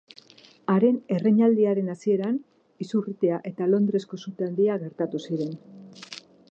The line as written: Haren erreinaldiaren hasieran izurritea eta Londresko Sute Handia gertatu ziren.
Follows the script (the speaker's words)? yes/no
yes